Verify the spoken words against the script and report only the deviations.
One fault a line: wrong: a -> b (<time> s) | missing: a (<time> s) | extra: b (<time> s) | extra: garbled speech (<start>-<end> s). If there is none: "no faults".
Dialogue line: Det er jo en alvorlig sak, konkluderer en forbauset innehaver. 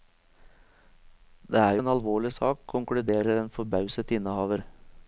missing: jo (1.8 s)